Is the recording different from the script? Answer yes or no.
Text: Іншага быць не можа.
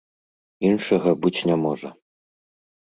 no